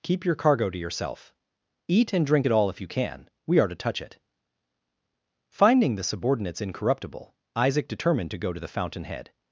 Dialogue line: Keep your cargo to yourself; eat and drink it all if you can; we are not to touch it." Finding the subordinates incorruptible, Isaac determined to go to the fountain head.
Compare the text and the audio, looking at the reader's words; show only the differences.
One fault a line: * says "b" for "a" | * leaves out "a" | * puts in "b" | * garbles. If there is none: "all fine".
* leaves out "not"